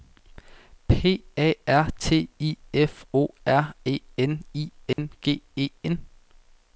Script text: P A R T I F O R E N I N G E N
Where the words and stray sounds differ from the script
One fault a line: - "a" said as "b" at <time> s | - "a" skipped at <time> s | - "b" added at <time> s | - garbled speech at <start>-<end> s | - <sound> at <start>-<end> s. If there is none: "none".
- dropout at 4.9-5.0 s